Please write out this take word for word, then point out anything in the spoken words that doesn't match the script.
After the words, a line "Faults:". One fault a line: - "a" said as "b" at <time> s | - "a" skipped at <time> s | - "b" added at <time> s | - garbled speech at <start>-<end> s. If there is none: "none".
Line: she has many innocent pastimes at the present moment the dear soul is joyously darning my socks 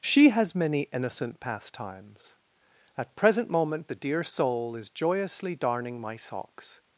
she has many innocent pastimes at present moment the dear soul is joyously darning my socks
Faults:
- "the" skipped at 3.1 s